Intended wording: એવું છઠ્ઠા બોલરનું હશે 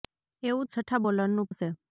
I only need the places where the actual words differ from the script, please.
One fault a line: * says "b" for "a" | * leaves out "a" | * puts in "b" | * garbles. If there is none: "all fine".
all fine